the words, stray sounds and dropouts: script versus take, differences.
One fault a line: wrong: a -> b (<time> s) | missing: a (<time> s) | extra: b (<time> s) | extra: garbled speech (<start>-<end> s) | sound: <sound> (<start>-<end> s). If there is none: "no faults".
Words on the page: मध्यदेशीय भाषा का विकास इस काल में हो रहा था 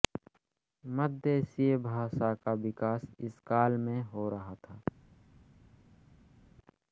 no faults